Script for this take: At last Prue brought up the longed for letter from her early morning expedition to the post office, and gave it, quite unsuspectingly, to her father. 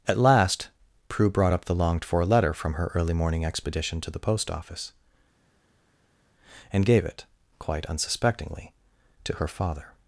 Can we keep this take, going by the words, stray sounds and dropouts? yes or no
yes